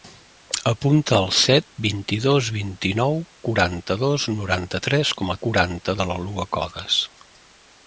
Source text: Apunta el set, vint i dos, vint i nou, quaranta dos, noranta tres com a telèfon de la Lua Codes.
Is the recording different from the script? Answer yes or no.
yes